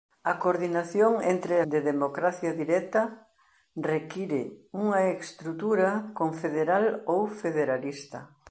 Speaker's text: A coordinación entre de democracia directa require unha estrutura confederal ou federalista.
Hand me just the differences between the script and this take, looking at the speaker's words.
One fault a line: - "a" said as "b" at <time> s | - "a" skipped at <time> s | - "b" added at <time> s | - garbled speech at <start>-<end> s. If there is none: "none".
none